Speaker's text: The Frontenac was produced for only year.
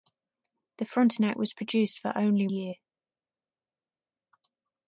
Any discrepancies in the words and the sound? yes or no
no